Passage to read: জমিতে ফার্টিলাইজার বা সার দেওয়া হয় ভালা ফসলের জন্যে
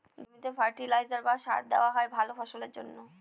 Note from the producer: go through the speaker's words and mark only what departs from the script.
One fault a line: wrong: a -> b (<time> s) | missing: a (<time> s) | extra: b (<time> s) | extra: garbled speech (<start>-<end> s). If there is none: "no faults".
no faults